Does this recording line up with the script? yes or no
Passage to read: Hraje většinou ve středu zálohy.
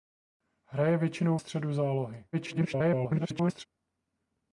no